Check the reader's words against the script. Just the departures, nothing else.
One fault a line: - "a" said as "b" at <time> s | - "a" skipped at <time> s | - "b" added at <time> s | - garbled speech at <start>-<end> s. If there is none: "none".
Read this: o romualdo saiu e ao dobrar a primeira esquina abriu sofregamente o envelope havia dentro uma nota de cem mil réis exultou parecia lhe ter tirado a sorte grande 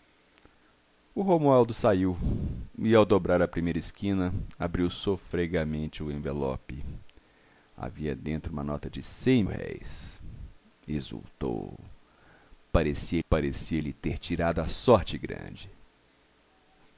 - "mil" skipped at 9.4 s
- "parecia" added at 13.3 s